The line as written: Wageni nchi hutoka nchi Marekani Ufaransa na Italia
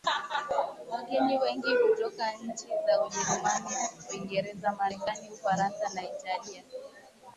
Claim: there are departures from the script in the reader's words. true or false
true